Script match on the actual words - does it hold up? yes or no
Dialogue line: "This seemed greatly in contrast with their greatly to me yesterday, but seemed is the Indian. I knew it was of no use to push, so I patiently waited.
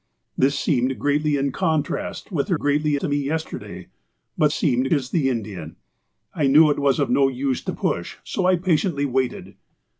yes